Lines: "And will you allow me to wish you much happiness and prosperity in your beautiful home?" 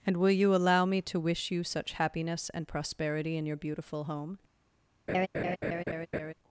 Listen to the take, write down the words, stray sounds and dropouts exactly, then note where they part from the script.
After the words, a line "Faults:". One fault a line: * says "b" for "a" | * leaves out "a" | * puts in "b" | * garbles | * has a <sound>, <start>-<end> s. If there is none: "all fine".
"And will you allow me to wish you such happiness and prosperity in your beautiful home?"
Faults:
* says "such" for "much"
* has a laugh, 5.1-6.3 s